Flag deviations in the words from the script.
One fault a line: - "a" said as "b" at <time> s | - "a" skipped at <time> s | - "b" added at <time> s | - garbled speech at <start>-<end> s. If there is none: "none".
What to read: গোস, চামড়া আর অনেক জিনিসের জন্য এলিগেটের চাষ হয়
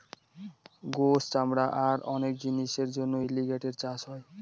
none